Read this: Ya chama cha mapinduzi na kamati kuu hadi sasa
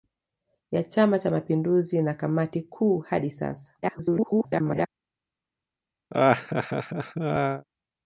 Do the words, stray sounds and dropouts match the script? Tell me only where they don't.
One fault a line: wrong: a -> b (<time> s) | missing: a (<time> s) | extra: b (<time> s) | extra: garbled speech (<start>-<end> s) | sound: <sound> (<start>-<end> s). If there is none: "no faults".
extra: garbled speech (3.8-4.9 s)
sound: laugh (6.1-7.6 s)